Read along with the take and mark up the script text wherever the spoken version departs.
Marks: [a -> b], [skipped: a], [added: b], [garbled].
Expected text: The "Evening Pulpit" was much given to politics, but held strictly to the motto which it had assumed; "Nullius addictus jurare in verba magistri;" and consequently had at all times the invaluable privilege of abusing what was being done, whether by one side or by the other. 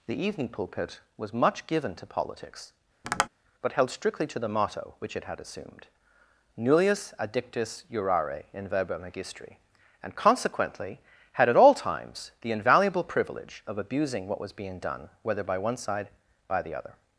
The "Evening Pulpit" was much given to politics, but held strictly to the motto which it had assumed; "Nullius addictus jurare in verba magistri;" and consequently had at all times the invaluable privilege of abusing what was being done, whether by one side [skipped: or] by the other.